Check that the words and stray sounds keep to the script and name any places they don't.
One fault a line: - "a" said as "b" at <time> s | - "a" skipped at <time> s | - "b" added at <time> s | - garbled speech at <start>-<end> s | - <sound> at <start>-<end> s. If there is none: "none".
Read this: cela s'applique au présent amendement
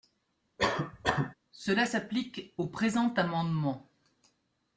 - cough at 0.6-1.3 s